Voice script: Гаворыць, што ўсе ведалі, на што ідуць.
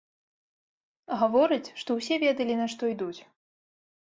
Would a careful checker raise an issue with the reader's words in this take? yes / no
no